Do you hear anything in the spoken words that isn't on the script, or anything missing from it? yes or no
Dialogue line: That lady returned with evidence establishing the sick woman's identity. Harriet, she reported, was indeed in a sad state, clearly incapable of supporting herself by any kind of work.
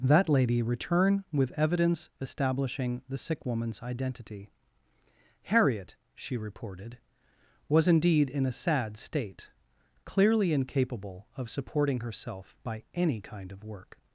yes